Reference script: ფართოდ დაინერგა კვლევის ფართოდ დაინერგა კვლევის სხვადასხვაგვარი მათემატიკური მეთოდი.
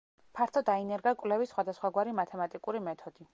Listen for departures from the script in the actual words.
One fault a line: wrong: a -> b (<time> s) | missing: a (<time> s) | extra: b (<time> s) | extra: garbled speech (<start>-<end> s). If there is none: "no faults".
missing: ფართოდ დაინერგა კვლევის (1.5 s)